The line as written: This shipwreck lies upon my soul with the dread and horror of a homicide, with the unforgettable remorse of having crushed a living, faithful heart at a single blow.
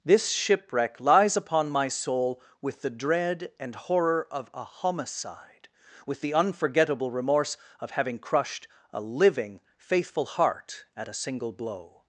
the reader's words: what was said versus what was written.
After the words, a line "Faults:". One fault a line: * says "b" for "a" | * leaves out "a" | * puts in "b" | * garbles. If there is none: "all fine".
This shipwreck lies upon my soul with the dread and horror of a homicide, with the unforgettable remorse of having crushed a living, faithful heart at a single blow.
Faults:
all fine